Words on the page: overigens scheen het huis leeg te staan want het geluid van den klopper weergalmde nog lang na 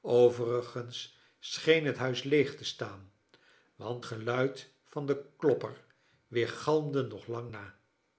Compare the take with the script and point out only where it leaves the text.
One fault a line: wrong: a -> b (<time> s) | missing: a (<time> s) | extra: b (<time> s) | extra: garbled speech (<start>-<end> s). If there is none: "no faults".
missing: het (4.0 s)